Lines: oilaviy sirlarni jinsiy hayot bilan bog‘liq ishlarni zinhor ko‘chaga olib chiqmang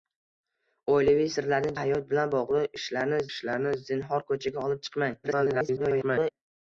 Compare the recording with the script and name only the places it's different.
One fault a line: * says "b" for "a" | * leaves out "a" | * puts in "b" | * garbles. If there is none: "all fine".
* leaves out "jinsiy"
* puts in "ishlarni"
* garbles